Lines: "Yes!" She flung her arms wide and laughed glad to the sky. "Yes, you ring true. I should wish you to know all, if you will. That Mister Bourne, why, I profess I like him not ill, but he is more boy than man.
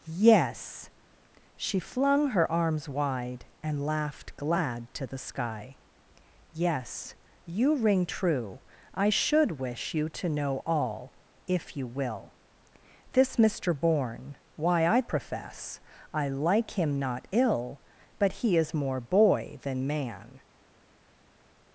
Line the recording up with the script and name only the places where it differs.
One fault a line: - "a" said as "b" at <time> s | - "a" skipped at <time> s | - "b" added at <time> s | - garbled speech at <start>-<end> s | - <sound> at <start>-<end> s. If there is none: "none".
- "That" said as "This" at 13.1 s